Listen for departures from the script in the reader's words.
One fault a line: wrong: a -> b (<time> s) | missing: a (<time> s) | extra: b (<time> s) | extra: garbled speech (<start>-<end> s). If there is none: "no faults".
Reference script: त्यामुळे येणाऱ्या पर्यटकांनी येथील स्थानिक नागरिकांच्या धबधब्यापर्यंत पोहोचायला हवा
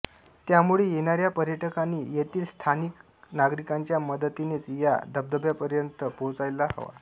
extra: मदतीनेच या (4.0 s)